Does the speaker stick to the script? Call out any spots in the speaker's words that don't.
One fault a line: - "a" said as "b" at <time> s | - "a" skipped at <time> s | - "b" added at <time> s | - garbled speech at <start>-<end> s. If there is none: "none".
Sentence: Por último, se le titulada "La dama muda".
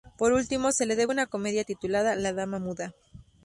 - "debe una comedia" added at 0.9 s